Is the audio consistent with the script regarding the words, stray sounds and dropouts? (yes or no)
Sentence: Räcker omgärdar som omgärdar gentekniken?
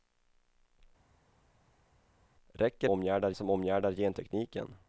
yes